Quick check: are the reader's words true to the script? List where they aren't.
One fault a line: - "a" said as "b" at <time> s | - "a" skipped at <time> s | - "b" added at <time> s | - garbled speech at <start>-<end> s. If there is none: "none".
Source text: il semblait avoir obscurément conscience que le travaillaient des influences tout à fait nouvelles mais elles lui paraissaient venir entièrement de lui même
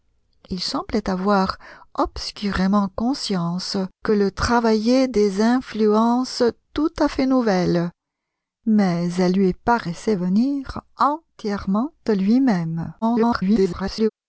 - garbled speech at 13.0-14.1 s